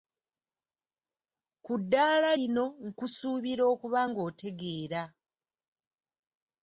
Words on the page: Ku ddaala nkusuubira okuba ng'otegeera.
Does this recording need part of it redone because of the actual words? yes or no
yes